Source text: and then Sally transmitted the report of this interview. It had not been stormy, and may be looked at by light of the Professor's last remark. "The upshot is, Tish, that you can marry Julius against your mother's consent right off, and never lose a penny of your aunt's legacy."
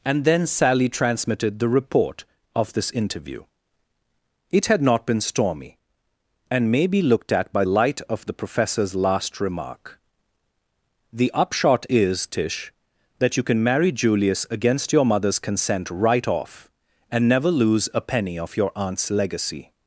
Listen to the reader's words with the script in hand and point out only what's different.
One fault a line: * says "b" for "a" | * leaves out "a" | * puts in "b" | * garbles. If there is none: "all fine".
all fine